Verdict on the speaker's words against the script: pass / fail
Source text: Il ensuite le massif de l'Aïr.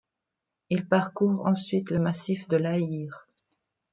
fail